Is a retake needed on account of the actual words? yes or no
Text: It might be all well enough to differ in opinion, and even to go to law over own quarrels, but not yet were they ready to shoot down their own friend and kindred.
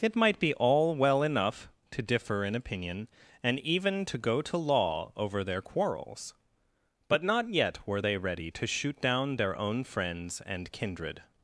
yes